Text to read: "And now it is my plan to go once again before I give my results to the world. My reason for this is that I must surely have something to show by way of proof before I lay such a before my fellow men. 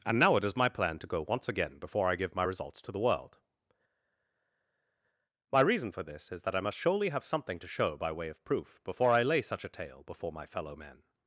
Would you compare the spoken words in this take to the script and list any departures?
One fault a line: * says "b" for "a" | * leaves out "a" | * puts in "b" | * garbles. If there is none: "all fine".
* puts in "tale"